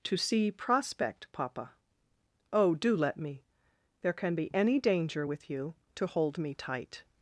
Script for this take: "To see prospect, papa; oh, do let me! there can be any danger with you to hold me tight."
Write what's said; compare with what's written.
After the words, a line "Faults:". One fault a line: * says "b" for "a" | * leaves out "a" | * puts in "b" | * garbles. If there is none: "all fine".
"To see prospect, papa; oh, do let me! there can be any danger with you to hold me tight."
Faults:
all fine